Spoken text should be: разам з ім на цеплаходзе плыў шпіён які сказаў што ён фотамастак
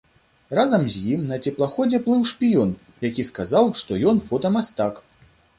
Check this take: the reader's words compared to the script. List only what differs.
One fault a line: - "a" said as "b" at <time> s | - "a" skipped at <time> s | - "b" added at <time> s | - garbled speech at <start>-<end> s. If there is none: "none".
none